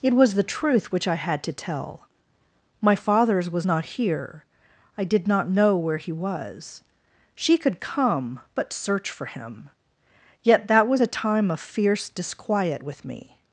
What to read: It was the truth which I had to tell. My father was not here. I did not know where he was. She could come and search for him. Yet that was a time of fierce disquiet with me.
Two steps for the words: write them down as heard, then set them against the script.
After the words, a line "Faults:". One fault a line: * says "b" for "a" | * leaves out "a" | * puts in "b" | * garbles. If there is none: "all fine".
It was the truth which I had to tell. My fathers was not here. I did not know where he was. She could come but search for him. Yet that was a time of fierce disquiet with me.
Faults:
* says "fathers" for "father"
* says "but" for "and"